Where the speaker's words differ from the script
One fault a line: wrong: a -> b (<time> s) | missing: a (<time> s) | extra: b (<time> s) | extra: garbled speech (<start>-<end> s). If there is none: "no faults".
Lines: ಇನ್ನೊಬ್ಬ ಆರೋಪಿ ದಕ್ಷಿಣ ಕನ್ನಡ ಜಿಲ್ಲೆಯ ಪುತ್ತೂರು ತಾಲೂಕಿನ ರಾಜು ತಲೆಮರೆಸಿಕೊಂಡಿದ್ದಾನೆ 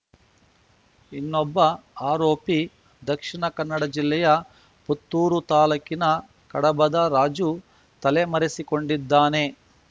extra: ಕಡಬದ (6.5 s)